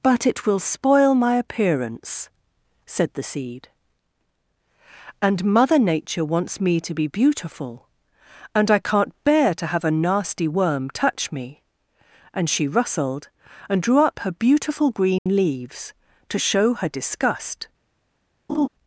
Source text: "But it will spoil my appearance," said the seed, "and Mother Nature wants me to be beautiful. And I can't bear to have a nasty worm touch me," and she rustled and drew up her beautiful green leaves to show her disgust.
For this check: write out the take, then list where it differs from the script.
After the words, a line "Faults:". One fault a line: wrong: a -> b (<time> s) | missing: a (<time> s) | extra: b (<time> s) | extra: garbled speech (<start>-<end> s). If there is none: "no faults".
"But it will spoil my appearance," said the seed, "and Mother Nature wants me to be beautiful. And I can't bear to have a nasty worm touch me," and she rustled and drew up her beautiful green leaves to show her disgust.
Faults:
no faults